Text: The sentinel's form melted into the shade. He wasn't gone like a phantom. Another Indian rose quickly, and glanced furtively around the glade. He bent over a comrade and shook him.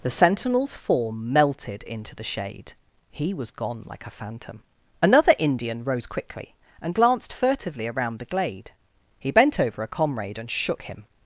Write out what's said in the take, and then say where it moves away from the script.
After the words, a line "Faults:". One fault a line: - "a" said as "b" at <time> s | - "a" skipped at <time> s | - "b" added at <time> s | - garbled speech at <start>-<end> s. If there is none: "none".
The sentinel's form melted into the shade. He was gone like a phantom. Another Indian rose quickly, and glanced furtively around the glade. He bent over a comrade and shook him.
Faults:
- "wasn't" said as "was" at 3.4 s